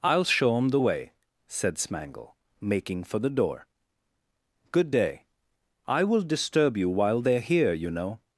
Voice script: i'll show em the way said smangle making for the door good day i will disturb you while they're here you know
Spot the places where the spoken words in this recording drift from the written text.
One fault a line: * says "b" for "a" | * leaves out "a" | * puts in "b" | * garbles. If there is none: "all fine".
all fine